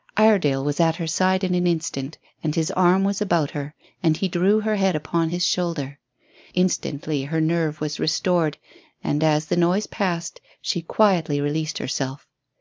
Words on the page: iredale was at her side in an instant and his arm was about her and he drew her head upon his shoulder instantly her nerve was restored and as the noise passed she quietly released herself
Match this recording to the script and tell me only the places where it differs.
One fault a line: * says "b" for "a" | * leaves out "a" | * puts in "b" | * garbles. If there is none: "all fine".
all fine